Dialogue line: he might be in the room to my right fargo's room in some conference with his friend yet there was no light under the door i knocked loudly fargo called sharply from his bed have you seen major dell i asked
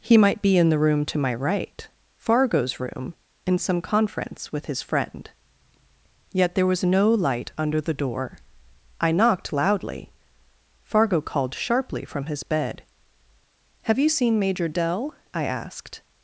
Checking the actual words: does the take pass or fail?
pass